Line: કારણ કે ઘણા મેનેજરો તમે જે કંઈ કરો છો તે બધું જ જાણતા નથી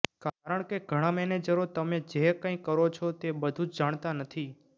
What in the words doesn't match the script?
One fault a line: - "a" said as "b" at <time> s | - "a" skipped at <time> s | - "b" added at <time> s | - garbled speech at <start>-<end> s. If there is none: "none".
none